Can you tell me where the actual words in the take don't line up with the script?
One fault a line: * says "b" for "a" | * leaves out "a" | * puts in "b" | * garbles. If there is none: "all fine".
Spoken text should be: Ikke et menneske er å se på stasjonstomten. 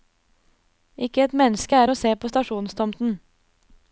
all fine